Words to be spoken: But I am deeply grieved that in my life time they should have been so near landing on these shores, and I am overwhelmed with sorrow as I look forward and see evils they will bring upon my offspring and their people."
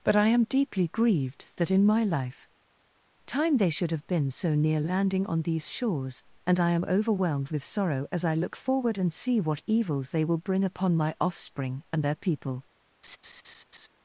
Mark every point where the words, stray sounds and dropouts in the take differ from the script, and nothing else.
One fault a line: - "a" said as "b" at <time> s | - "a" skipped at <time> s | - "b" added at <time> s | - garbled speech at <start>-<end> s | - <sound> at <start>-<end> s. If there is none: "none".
- "what" added at 9.4 s
- laugh at 13.0-13.9 s